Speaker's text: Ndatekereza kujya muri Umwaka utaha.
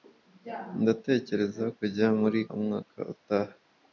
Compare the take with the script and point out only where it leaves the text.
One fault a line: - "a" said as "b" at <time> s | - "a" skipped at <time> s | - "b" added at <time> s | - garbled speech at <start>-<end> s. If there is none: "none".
none